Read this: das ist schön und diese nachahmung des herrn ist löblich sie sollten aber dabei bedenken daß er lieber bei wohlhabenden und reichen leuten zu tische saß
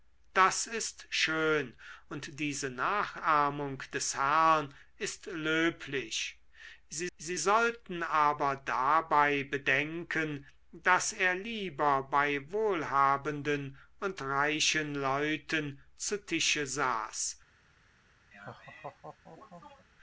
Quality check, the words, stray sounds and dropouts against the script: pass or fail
fail